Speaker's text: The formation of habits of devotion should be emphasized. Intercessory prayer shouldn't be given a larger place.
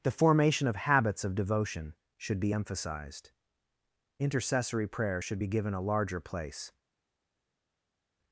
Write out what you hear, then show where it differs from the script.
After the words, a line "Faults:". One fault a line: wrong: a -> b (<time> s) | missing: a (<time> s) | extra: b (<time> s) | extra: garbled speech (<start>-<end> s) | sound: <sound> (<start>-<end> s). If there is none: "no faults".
The formation of habits of devotion should be emphasized. Intercessory prayer should be given a larger place.
Faults:
wrong: shouldn't -> should (5.2 s)